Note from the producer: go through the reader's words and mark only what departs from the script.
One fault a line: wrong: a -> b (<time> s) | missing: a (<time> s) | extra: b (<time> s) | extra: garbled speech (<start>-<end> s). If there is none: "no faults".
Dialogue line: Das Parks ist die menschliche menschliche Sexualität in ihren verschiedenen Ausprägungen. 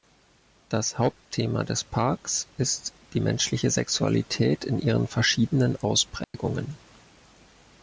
extra: Hauptthema des (1.0 s)
missing: menschliche (3.7 s)